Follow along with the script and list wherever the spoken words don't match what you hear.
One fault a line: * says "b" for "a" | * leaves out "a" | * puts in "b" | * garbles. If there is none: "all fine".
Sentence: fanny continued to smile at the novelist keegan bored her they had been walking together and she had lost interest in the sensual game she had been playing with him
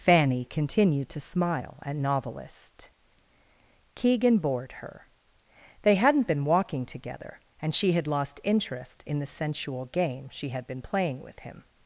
* leaves out "the"
* says "hadn't" for "had"